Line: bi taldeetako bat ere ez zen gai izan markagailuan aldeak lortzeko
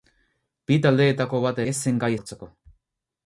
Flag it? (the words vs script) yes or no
yes